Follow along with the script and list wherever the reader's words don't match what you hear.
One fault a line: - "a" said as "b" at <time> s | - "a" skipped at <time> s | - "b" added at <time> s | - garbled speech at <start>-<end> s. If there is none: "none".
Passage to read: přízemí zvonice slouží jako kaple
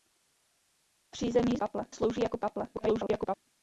- "zvonice" said as "kaple" at 1.6 s
- garbled speech at 2.7-3.4 s